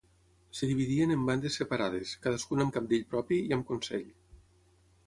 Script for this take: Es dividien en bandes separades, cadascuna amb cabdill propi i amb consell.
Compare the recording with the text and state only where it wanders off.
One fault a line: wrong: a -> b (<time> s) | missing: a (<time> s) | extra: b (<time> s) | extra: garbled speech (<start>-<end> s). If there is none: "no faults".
no faults